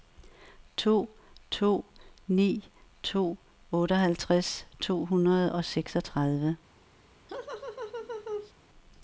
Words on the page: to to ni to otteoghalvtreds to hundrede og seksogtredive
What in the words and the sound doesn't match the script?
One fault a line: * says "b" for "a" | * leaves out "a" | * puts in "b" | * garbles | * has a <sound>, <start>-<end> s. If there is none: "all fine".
* has a laugh, 7.3-8.5 s